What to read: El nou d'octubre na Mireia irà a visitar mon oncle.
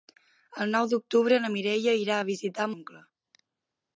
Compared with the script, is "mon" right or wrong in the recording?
wrong